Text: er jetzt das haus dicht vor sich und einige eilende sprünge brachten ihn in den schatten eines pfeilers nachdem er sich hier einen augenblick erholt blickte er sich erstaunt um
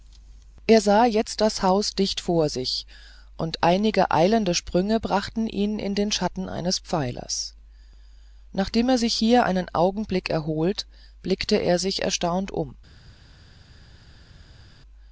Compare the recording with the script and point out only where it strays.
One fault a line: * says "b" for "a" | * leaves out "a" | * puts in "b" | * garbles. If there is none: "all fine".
* puts in "sah"